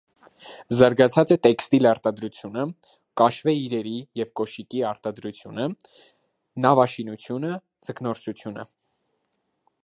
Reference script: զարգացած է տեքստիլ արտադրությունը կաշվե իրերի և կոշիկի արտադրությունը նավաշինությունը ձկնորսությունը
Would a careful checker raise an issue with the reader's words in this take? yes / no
no